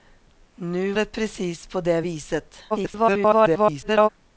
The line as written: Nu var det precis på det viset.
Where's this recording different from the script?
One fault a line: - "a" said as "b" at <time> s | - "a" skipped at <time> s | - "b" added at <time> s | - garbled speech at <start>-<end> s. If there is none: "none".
- "var" skipped at 0.9 s
- garbled speech at 2.7-4.1 s